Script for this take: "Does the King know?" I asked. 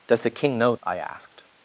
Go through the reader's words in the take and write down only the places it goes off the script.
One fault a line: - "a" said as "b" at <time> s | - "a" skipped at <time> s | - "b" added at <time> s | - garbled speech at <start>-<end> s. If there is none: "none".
none